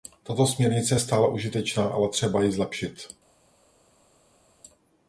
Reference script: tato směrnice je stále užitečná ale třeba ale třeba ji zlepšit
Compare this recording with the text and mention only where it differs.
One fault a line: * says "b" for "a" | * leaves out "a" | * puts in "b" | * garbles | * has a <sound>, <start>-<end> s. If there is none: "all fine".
* leaves out "ale třeba"